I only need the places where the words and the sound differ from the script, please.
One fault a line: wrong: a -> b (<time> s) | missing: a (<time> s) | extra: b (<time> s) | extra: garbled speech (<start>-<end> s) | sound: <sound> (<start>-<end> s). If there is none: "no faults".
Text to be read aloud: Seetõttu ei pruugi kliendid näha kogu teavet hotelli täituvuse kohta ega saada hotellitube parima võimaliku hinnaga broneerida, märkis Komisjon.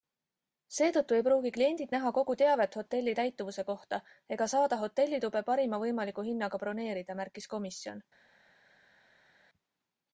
no faults